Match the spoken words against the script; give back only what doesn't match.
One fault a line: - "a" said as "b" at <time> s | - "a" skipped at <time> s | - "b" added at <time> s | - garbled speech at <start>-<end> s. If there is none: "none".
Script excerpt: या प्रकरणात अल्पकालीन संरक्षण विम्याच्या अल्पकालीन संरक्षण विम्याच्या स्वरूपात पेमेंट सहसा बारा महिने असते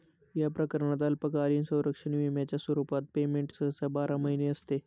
- "अल्पकालीन संरक्षण विम्याच्या" skipped at 2.6 s